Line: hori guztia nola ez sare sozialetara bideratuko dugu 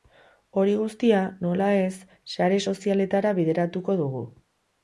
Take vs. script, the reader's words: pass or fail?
pass